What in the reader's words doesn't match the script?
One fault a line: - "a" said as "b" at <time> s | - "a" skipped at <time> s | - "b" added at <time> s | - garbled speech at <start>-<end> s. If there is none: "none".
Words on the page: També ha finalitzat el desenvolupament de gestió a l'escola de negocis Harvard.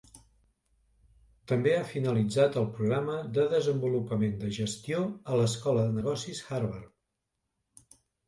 - "programa de" added at 2.8 s